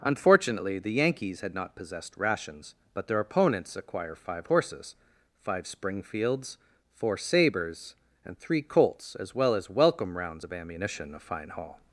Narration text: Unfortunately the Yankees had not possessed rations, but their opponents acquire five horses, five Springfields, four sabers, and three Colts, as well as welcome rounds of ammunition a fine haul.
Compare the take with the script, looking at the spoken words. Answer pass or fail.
pass